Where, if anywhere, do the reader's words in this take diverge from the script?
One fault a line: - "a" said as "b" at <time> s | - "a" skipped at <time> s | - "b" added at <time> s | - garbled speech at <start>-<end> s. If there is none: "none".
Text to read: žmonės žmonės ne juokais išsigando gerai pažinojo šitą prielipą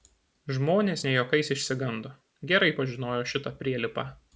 - "žmonės" skipped at 1.0 s